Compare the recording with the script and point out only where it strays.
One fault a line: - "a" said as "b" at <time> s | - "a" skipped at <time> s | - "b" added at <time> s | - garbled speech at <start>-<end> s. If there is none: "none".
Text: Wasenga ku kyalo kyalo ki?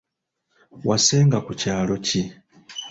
- "kyalo" skipped at 1.9 s